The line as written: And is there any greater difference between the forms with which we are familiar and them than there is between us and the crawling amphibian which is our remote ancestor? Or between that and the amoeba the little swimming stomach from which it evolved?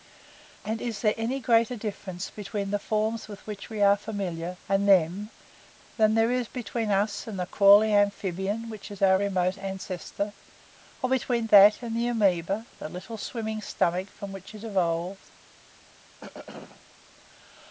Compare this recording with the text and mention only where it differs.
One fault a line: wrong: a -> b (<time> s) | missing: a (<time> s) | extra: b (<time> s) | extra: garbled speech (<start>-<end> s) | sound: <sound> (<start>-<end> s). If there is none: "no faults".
sound: throat clearing (16.2-16.9 s)